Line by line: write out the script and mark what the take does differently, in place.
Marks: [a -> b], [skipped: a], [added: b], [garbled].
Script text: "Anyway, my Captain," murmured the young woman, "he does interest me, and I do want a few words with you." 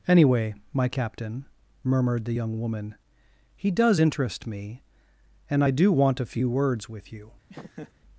"Anyway, my Captain," murmured the young woman, "he does interest me, and I do want a few words with you."